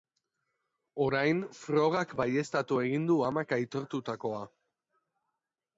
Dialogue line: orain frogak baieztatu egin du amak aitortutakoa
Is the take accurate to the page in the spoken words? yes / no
yes